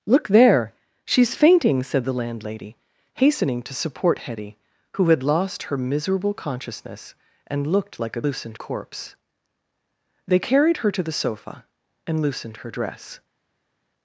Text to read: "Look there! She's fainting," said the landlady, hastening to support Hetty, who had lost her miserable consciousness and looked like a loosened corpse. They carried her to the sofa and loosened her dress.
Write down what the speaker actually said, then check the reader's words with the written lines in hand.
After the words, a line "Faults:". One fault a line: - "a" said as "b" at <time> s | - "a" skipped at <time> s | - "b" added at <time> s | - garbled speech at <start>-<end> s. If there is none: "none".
"Look there! She's fainting," said the landlady, hastening to support Hetty, who had lost her miserable consciousness and looked like a loosened corpse. They carried her to the sofa and loosened her dress.
Faults:
none